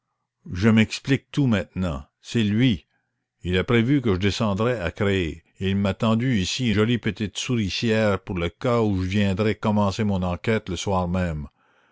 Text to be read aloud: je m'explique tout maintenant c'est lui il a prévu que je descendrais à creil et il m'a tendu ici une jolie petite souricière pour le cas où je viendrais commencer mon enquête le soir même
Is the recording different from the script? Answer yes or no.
yes